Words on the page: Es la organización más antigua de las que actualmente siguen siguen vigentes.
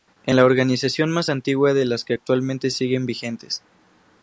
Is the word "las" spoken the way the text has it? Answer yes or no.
yes